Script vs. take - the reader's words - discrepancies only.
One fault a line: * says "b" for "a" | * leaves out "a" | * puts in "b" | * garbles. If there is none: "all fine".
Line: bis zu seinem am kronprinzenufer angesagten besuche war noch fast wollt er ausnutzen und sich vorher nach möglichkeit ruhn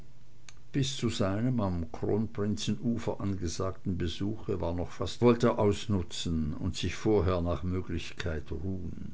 all fine